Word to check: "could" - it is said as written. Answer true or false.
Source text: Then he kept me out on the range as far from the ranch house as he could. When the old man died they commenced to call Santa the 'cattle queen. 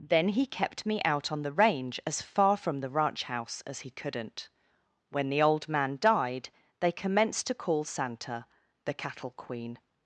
false